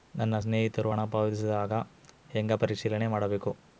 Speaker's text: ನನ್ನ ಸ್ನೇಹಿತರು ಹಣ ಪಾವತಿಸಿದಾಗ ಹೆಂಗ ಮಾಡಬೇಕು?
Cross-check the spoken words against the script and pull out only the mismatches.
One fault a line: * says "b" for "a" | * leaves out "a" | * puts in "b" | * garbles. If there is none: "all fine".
* puts in "ಪರಿಶೇಲನೆ"